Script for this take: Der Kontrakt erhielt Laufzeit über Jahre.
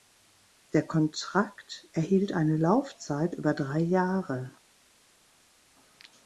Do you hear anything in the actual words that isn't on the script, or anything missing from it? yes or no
yes